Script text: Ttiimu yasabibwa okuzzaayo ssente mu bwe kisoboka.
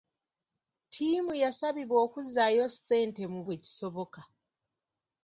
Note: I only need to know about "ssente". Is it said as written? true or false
true